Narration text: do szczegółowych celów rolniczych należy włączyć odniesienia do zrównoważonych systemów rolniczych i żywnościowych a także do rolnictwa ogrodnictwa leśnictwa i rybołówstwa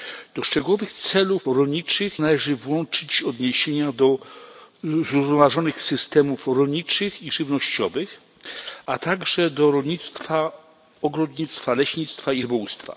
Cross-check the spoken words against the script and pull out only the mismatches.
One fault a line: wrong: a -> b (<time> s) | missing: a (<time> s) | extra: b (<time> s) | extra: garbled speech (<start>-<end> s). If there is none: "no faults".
no faults